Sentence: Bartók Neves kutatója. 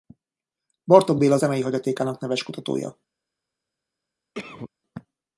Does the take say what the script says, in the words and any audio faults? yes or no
no